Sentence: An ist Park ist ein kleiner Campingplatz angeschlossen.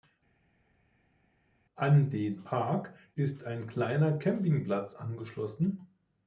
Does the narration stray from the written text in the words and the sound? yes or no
yes